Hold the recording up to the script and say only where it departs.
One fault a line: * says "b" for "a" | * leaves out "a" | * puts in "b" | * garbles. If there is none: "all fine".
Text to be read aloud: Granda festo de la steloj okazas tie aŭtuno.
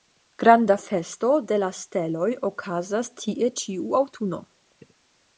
* puts in "ĉiu"